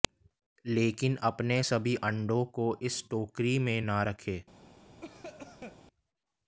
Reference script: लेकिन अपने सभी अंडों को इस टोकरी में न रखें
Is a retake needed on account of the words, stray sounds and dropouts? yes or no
yes